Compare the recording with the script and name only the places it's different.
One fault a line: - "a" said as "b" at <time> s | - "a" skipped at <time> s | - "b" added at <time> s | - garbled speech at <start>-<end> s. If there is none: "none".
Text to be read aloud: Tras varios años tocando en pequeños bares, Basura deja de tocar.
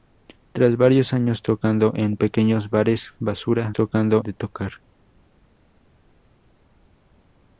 - "deja" said as "tocando" at 3.7 s